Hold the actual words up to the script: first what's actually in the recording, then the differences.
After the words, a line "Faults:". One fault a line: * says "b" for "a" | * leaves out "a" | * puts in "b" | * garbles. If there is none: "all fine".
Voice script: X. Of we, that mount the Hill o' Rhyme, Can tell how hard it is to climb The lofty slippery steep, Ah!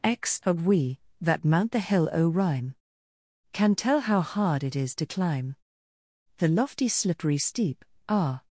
X. Of we, that mount the Hill o' Rhyme, Can tell how hard it is to climb The lofty slippery steep, Ah!
Faults:
all fine